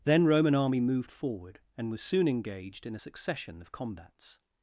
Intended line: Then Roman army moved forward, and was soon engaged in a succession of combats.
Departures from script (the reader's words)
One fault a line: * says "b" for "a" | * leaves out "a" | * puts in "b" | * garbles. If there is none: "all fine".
all fine